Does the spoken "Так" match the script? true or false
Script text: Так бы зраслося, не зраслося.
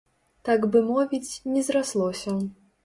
true